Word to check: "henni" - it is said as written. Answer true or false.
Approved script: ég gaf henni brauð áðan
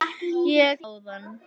false